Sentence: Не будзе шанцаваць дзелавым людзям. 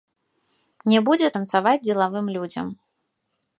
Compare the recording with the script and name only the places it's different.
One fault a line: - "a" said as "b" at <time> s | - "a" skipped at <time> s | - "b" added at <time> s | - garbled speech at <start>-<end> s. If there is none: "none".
none